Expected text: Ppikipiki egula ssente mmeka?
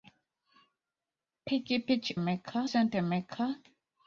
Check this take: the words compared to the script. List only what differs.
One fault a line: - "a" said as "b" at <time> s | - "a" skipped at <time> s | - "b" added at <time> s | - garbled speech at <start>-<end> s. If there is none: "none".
- "egula" said as "mmeka" at 2.2 s